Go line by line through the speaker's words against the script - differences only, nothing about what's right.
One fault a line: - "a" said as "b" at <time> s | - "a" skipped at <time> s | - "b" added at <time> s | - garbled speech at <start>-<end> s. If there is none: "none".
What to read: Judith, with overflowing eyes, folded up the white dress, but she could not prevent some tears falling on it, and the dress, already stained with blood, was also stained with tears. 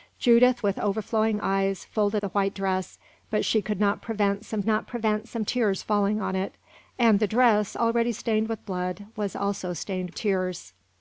- "up" skipped at 2.2 s
- "not prevent some" added at 4.7 s
- "with" skipped at 10.1 s